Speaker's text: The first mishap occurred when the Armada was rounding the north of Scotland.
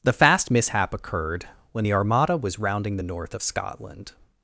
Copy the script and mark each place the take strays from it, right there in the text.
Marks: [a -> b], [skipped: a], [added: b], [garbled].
The [first -> fast] mishap occurred when the Armada was rounding the north of Scotland.